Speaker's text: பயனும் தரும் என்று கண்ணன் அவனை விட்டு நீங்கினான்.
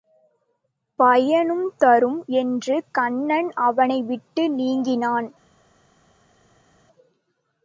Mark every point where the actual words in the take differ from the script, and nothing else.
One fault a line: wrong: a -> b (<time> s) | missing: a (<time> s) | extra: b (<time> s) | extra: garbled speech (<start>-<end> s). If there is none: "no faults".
no faults